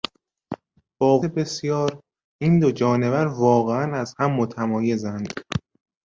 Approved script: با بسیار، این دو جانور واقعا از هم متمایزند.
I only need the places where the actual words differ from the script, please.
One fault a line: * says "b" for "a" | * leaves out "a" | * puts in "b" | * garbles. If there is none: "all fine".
all fine